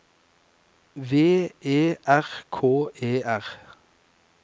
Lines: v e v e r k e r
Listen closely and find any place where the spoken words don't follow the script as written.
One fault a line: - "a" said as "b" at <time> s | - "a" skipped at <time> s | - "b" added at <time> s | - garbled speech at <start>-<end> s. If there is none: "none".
- "v e" skipped at 2.0 s